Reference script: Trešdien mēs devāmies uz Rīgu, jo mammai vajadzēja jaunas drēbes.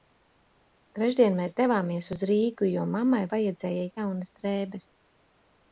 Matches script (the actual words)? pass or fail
pass